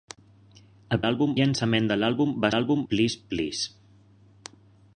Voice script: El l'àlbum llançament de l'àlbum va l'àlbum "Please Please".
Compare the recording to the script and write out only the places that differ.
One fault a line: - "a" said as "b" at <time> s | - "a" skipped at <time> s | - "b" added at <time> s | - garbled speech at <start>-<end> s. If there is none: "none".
none